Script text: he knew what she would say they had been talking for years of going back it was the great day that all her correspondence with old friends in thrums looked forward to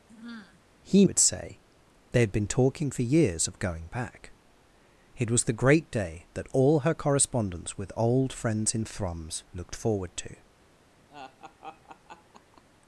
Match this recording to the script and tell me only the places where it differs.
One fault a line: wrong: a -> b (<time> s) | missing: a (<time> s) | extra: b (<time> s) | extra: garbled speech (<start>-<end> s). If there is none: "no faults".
missing: knew what she (1.0 s)